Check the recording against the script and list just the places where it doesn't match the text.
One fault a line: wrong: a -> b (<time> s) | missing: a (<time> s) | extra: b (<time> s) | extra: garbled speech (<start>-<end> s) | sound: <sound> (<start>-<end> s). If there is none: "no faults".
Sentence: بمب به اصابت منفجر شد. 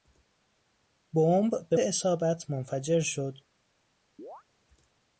sound: chirp (4.2-4.4 s)